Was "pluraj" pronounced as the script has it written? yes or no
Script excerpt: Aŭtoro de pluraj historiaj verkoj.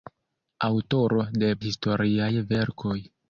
no